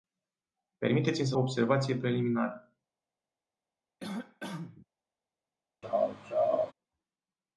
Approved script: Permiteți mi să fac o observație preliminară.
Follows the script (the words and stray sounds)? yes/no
no